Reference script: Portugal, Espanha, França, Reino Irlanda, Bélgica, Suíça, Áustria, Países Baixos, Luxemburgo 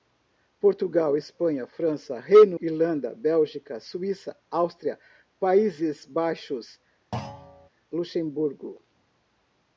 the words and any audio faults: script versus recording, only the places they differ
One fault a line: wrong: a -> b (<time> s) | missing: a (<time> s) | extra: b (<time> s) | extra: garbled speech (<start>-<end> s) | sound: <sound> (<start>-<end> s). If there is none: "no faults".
sound: thud (7.1-7.7 s)